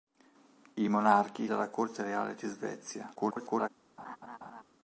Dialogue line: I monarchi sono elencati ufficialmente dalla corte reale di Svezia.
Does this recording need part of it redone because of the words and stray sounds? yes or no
yes